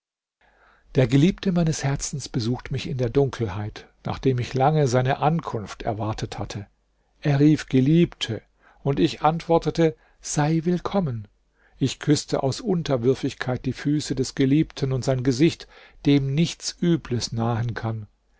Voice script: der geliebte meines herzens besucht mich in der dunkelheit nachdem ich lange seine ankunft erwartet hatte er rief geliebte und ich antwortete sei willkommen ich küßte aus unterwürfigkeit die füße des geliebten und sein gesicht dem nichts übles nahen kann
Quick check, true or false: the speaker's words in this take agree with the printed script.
true